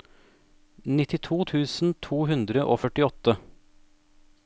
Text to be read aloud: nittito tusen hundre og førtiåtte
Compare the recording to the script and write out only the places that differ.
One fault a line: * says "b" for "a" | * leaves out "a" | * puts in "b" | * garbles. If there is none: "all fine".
* puts in "to"